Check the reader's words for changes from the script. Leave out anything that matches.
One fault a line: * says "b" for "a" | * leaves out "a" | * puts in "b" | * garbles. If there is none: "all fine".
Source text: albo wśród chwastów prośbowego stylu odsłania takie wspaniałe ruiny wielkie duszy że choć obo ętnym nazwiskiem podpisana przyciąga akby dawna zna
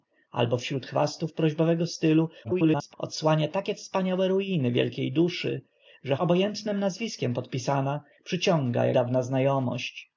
* garbles
* leaves out "choć"
* leaves out "akby"